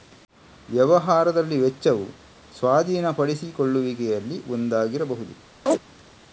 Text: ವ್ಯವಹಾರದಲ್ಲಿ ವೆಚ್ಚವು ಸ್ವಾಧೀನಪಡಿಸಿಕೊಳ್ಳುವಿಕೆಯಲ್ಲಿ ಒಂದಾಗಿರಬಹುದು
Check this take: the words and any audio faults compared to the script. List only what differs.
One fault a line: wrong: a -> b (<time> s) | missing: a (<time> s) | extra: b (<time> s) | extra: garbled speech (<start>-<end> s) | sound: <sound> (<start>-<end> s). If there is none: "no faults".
sound: chirp (5.7-5.8 s)